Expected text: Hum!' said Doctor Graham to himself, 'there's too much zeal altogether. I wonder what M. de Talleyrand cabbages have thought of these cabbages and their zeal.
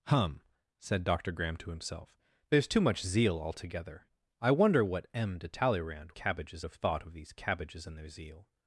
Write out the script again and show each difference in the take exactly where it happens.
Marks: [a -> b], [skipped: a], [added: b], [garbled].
Hum!' said Doctor Graham to himself, 'there's too much zeal altogether. I wonder what M. de Talleyrand cabbages have thought of these cabbages and their zeal.